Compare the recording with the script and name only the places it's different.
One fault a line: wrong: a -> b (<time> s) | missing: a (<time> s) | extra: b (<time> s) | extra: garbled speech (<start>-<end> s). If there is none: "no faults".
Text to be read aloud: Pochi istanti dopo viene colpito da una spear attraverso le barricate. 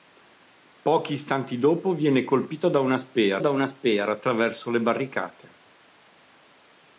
extra: da una spear (3.4 s)